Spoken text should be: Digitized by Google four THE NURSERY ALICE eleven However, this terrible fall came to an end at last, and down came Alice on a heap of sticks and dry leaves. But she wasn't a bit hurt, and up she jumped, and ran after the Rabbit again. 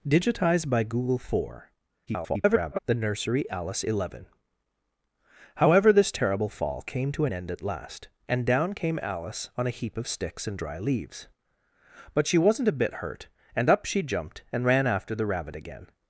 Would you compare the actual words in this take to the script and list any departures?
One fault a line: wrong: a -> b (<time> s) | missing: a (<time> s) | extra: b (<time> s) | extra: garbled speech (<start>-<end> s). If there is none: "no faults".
extra: garbled speech (2.1-2.8 s)